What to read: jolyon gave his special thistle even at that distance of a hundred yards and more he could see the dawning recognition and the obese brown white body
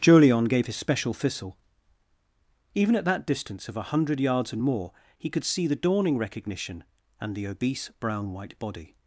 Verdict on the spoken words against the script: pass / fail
pass